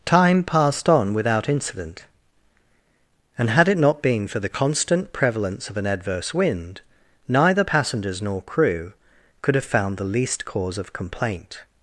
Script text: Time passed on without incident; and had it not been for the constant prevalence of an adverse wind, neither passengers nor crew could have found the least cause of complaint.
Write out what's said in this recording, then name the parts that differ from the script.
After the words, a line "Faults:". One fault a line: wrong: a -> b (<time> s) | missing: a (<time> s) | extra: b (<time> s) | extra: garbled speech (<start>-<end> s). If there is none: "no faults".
Time passed on without incident; and had it not been for the constant prevalence of an adverse wind, neither passengers nor crew could have found the least cause of complaint.
Faults:
no faults